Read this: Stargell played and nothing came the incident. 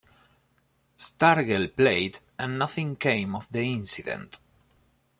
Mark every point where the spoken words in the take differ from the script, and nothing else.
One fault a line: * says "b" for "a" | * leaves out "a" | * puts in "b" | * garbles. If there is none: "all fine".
* puts in "of"